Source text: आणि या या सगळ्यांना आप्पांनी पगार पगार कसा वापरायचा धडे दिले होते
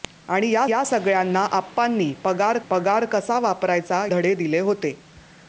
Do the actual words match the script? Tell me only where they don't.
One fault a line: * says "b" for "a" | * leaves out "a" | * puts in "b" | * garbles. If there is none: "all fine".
all fine